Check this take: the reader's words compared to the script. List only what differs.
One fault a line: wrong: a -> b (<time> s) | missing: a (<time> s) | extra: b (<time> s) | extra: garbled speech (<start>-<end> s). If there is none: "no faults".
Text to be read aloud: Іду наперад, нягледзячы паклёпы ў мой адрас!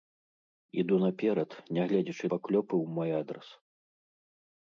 no faults